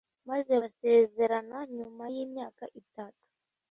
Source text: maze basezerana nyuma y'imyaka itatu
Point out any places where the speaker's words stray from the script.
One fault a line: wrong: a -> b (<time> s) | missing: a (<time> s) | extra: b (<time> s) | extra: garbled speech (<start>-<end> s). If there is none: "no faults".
no faults